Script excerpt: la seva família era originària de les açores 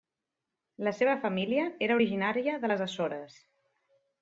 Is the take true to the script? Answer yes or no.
yes